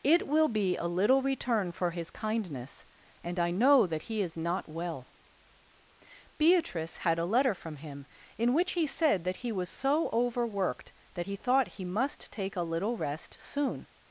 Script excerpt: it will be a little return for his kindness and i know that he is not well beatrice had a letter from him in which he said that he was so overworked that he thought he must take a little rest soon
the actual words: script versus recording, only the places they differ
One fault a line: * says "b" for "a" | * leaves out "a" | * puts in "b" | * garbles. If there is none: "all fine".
all fine